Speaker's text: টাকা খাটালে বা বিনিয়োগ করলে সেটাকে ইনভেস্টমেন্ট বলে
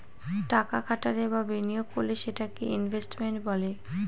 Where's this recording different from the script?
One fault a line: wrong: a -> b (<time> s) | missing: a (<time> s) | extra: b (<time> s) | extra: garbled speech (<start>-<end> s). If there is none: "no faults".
no faults